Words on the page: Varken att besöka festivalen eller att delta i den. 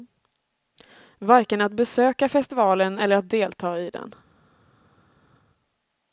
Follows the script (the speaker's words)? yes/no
yes